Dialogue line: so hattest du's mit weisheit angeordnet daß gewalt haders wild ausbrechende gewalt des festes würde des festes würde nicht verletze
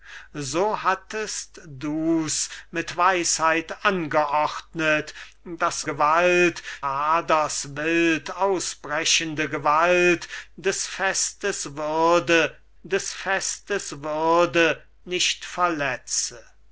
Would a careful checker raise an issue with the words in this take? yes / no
no